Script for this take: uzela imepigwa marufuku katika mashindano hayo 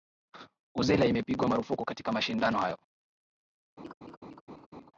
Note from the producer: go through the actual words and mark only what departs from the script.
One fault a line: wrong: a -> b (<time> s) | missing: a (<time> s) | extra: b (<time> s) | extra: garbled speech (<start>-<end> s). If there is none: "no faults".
no faults